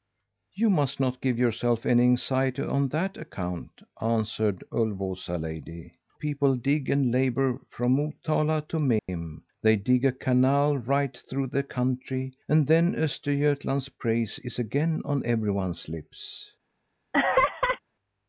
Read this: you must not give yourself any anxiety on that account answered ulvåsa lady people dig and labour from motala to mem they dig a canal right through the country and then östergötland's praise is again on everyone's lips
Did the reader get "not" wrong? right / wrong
right